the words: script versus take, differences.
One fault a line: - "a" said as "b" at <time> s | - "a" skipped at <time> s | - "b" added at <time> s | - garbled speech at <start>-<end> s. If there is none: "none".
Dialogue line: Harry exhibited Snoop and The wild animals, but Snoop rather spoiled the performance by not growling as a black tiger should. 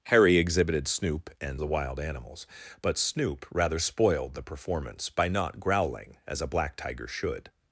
none